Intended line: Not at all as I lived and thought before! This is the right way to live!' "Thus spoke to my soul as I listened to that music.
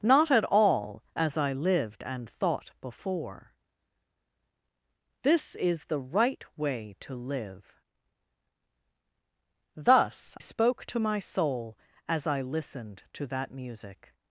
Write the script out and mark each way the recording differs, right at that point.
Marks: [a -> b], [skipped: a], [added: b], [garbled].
Not at all as I lived and thought before! This is the right way to live!' "Thus spoke to my soul as I listened to that music.